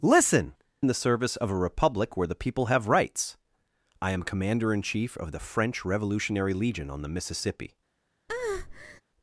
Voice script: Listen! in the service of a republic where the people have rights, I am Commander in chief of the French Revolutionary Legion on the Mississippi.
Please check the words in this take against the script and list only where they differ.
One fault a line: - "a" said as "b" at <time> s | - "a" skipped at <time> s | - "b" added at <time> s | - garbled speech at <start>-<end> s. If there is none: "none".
none